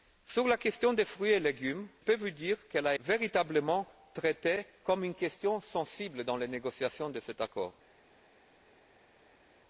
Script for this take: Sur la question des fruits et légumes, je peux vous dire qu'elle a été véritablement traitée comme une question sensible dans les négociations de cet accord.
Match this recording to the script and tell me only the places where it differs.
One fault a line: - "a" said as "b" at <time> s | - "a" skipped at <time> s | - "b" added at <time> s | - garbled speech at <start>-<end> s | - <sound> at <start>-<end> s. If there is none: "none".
- "je" skipped at 1.9 s
- "été" skipped at 3.0 s